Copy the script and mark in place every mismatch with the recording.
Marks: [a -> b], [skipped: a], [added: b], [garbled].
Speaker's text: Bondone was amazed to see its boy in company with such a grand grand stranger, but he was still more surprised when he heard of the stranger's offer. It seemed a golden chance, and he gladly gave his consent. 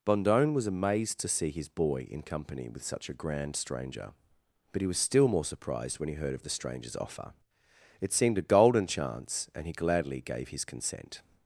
Bondone was amazed to see [its -> his] boy in company with such a grand [skipped: grand] stranger, but he was still more surprised when he heard of the stranger's offer. It seemed a golden chance, and he gladly gave his consent.